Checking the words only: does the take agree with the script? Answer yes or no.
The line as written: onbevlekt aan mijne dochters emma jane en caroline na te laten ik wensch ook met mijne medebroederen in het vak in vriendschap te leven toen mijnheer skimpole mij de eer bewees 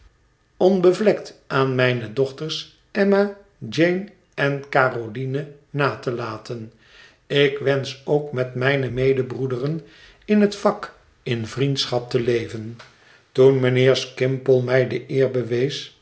yes